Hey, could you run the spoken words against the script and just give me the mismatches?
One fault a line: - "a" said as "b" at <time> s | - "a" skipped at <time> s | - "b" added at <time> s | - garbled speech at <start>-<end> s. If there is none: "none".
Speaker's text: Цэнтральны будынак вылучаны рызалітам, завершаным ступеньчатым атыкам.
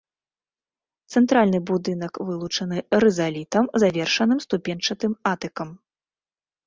none